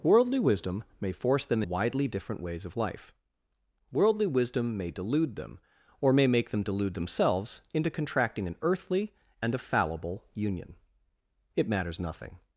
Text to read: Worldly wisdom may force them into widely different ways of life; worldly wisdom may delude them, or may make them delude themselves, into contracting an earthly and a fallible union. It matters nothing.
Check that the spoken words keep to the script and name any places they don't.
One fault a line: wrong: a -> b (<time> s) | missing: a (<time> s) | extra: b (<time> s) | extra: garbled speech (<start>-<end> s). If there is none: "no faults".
missing: into (1.6 s)